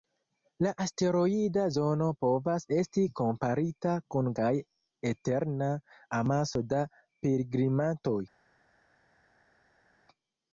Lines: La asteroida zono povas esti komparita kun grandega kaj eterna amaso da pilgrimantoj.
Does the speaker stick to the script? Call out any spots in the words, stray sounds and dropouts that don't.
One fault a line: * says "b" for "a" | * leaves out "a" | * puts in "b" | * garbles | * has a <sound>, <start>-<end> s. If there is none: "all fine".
* leaves out "grandega"